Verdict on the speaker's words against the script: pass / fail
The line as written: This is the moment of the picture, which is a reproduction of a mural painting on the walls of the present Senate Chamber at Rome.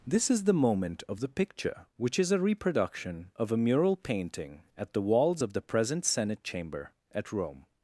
fail